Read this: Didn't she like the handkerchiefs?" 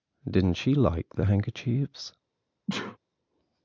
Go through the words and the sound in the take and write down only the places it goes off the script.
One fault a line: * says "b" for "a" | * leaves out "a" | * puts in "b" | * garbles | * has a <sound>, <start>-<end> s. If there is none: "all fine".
* has a sneeze, 2.7-3.0 s